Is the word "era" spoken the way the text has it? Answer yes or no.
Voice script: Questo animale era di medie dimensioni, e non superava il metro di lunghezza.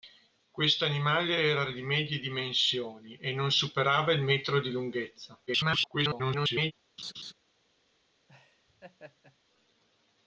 yes